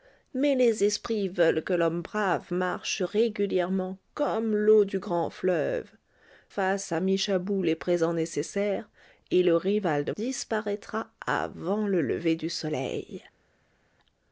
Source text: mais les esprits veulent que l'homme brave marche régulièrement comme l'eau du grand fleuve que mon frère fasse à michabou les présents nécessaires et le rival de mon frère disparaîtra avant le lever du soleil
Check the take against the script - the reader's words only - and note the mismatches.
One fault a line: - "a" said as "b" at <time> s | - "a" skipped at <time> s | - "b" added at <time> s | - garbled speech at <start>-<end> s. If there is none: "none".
- "que mon frère" skipped at 5.9 s
- "mon frère" skipped at 10.1 s